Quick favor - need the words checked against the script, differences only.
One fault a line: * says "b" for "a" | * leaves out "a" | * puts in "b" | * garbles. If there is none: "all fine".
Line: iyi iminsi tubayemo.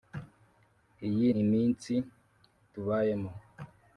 all fine